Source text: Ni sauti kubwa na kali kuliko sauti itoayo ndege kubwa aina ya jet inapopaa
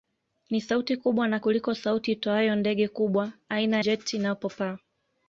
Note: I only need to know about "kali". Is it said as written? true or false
false